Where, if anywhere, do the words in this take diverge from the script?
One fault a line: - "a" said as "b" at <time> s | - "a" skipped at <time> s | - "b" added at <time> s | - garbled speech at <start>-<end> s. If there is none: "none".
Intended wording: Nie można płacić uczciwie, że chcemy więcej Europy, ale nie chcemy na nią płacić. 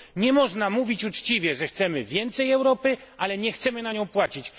- "płacić" said as "mówić" at 0.7 s